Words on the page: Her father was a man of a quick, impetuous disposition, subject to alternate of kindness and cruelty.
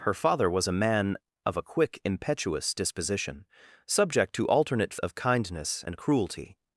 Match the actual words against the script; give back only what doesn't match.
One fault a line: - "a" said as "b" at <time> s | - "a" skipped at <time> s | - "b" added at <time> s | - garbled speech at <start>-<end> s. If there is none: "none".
none